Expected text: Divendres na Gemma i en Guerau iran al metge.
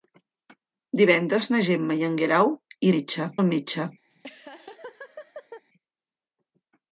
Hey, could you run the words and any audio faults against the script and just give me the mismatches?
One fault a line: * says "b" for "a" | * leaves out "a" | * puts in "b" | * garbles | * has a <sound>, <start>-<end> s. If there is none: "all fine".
* says "metge" for "iran"
* has a laugh, 4.1-5.6 s